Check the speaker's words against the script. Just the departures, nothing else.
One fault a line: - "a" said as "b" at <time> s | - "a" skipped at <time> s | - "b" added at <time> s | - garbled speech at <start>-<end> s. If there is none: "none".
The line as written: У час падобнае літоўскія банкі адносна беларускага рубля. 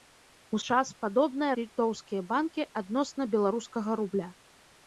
none